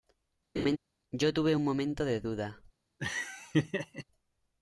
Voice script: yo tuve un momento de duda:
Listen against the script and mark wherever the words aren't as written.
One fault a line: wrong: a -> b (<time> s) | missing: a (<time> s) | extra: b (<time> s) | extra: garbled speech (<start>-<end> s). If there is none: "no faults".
no faults